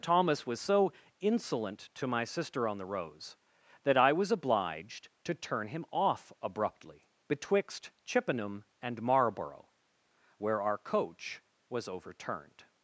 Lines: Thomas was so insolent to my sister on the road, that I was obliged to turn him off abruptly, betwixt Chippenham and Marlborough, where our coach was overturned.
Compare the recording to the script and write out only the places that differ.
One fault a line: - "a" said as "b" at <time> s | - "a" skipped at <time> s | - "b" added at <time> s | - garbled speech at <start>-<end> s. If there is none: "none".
- "road" said as "rose" at 2.8 s